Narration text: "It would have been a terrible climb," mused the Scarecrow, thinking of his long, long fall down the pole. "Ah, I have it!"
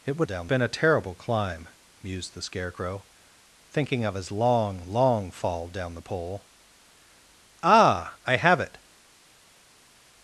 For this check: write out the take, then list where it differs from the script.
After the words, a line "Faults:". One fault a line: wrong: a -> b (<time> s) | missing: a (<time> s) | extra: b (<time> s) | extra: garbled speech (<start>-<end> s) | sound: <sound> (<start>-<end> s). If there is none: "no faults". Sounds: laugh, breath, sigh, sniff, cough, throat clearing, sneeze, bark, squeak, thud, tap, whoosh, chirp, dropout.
"It would down been a terrible climb," mused the Scarecrow, thinking of his long, long fall down the pole. "Ah, I have it!"
Faults:
wrong: have -> down (0.2 s)